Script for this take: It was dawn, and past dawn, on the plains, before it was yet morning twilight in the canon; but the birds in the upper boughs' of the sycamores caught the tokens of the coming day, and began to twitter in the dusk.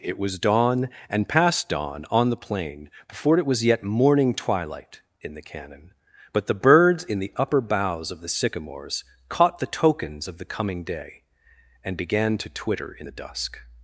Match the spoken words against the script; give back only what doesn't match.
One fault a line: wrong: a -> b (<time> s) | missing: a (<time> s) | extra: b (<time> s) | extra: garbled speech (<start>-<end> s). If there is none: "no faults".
wrong: plains -> plain (2.4 s)